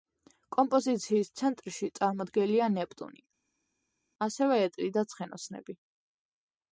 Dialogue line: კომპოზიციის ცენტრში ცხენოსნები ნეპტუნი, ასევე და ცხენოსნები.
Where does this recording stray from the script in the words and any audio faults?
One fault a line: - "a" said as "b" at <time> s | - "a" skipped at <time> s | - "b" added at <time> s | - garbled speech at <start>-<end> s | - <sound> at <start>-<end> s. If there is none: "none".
- "ცხენოსნები" said as "წარმოდგენილია" at 2.0 s
- "ეტლი" added at 4.7 s